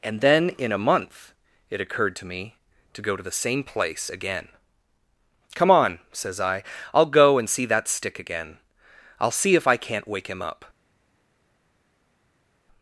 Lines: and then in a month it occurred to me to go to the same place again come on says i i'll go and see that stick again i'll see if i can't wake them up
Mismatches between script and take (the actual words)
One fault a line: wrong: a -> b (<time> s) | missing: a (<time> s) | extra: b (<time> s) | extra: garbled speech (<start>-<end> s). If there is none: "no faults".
wrong: them -> him (10.3 s)